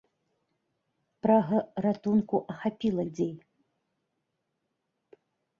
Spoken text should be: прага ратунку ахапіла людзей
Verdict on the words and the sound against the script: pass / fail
pass